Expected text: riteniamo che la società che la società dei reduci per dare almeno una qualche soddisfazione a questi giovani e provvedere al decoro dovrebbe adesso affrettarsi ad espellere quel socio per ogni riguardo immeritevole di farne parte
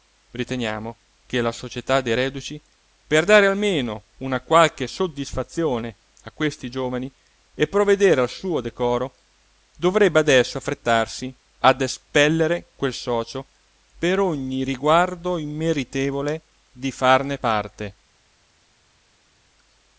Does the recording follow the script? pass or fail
fail